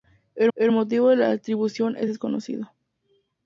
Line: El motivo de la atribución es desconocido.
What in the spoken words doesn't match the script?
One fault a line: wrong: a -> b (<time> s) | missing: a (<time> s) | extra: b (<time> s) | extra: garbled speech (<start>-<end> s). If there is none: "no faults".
extra: el (0.5 s)